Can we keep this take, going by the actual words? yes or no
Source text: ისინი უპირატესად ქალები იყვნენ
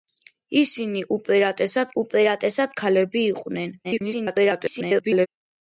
no